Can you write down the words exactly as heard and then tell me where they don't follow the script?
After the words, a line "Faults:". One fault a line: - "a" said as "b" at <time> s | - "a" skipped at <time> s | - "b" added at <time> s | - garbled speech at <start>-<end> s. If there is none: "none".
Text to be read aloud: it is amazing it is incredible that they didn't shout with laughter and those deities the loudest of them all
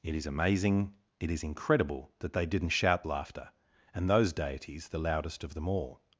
it is amazing it is incredible that they didn't shout laughter and those deities the loudest of them all
Faults:
- "with" skipped at 3.0 s